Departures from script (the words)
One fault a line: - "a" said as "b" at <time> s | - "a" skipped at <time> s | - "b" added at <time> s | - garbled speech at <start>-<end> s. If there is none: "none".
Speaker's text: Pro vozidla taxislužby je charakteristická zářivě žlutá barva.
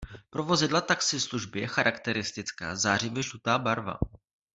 none